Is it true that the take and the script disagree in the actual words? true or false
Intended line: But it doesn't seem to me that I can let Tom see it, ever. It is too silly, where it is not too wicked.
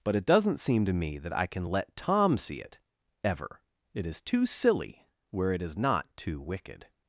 false